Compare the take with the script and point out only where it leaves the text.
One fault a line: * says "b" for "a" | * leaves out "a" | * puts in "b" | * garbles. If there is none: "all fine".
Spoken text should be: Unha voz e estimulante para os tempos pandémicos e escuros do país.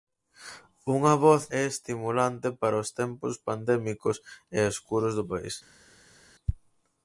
all fine